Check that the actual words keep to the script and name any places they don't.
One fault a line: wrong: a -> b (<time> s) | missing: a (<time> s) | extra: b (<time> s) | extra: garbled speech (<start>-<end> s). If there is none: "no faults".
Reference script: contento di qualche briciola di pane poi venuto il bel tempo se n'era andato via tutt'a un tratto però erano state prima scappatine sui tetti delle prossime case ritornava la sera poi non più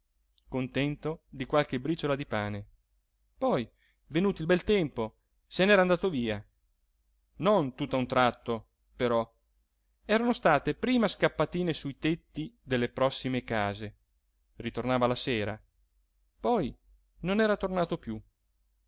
extra: non (7.4 s)
extra: era tornato (17.4 s)